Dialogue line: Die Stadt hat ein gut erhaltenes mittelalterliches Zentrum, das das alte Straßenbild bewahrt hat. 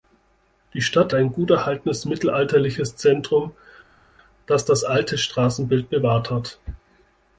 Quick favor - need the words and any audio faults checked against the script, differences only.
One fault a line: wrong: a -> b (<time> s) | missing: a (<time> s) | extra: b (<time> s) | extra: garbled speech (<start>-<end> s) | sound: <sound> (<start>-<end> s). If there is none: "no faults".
missing: hat (1.1 s)